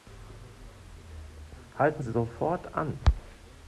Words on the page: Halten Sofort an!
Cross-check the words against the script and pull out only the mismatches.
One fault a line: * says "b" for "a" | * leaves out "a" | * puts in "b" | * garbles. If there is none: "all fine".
all fine